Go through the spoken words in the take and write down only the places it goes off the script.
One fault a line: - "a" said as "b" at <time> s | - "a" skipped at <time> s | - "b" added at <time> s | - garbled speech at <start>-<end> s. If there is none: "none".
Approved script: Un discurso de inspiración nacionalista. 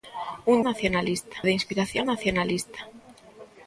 - "discurso" said as "nacionalista" at 0.7 s